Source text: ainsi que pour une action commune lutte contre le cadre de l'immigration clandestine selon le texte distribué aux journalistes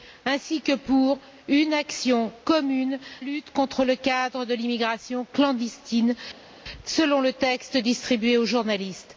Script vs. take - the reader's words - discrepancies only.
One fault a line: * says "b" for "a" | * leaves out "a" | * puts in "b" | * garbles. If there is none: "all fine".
all fine